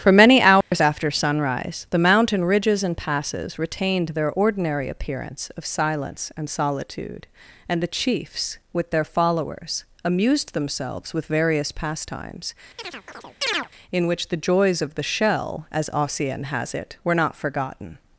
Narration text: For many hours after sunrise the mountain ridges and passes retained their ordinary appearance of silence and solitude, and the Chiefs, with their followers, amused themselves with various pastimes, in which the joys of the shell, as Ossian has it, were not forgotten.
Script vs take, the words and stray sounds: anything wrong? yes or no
yes